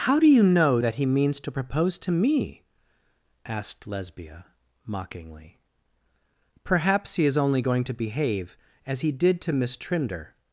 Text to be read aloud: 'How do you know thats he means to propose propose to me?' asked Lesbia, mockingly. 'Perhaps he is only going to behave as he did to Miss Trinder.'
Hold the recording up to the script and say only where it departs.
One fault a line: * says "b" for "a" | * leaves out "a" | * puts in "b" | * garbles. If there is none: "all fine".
* says "that" for "thats"
* leaves out "propose"